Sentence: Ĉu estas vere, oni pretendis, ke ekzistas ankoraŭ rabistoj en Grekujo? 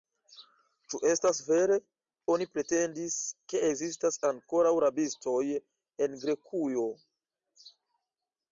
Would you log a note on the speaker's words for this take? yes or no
no